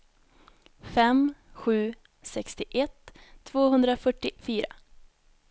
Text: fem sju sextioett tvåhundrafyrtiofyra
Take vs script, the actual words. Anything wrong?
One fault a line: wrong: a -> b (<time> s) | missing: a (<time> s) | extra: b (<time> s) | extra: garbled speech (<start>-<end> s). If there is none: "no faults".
no faults